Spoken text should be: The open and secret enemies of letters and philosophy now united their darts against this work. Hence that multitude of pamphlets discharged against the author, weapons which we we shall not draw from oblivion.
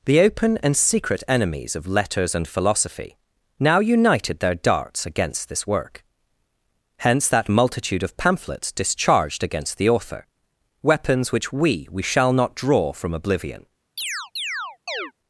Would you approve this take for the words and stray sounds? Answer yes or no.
no